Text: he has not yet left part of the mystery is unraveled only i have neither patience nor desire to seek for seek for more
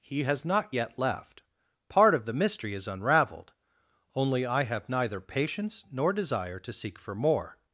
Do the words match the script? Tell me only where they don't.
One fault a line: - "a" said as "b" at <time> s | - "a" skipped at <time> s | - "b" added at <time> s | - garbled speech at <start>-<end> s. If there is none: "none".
- "seek for" skipped at 7.1 s